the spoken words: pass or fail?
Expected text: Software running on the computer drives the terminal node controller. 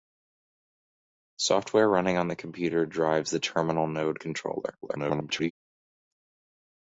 fail